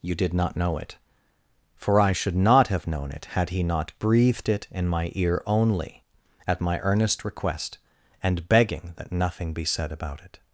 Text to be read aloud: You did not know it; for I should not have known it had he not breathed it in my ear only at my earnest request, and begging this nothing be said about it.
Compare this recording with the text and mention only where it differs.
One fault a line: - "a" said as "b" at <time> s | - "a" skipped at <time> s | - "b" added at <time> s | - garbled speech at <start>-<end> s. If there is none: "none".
- "this" said as "that" at 9.0 s